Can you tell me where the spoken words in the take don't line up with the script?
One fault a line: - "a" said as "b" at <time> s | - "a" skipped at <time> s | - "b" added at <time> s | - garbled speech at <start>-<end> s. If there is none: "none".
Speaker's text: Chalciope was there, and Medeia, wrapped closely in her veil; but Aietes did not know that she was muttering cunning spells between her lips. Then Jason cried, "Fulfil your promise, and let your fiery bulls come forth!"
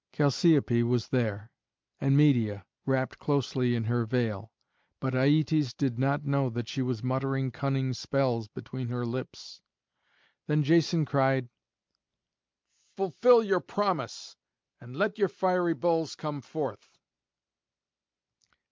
none